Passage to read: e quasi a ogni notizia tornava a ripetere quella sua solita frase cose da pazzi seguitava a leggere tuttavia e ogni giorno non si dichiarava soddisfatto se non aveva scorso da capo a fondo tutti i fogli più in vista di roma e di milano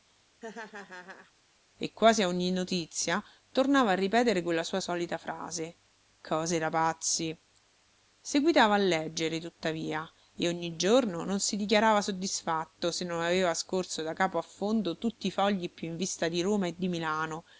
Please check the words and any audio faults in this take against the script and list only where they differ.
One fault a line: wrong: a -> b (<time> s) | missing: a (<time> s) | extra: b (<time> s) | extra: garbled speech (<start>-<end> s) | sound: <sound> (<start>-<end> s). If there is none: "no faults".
sound: laugh (0.4-1.3 s)